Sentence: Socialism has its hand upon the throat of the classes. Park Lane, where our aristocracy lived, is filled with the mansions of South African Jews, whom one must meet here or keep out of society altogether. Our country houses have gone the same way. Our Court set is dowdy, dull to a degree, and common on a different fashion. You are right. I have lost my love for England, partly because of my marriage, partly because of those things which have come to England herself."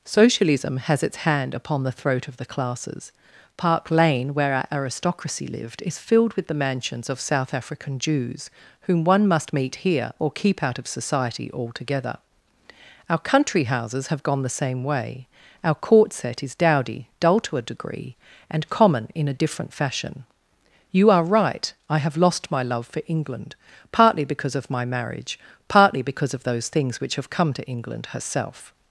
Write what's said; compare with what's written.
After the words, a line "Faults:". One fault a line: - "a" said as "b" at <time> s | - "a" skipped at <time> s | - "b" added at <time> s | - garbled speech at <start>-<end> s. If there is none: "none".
Socialism has its hand upon the throat of the classes. Park Lane, where our aristocracy lived, is filled with the mansions of South African Jews, whom one must meet here or keep out of society altogether. Our country houses have gone the same way. Our Court set is dowdy, dull to a degree, and common in a different fashion. You are right. I have lost my love for England, partly because of my marriage, partly because of those things which have come to England herself."
Faults:
- "on" said as "in" at 19.1 s